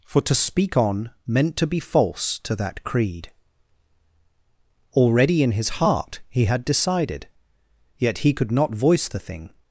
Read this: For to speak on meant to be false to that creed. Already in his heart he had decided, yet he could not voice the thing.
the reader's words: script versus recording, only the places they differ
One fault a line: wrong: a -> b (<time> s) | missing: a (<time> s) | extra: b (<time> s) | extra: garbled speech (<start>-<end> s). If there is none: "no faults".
no faults